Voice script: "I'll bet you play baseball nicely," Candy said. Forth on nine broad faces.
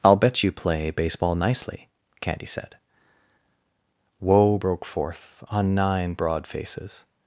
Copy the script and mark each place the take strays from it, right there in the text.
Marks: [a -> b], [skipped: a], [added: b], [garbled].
"I'll bet you play baseball nicely," Candy said. [added: Woe broke] Forth on nine broad faces.